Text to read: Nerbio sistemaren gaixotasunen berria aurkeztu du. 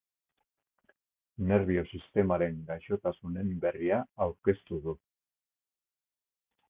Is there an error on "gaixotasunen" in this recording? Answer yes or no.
no